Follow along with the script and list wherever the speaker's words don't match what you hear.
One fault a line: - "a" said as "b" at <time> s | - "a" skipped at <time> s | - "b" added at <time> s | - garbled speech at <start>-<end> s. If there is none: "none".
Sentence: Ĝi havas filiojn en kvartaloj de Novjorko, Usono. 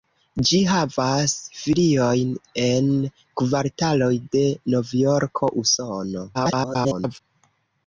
- garbled speech at 6.3-7.2 s